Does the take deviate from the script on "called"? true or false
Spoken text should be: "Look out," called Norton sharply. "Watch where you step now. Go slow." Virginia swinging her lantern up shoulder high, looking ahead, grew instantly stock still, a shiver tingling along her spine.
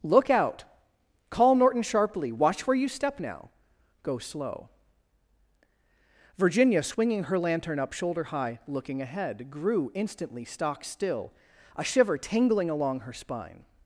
true